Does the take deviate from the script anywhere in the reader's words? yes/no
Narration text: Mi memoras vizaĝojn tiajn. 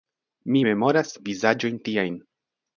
no